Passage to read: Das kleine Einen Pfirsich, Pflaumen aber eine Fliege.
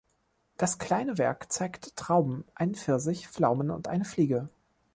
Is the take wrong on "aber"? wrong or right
wrong